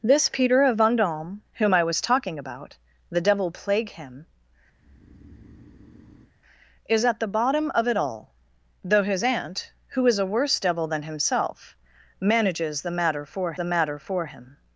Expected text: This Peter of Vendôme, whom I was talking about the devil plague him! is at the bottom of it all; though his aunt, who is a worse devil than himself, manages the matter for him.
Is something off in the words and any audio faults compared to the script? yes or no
yes